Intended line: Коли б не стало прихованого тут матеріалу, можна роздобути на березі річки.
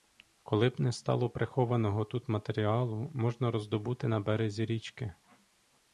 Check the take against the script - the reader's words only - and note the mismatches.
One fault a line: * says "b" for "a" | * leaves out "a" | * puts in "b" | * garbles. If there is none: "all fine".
all fine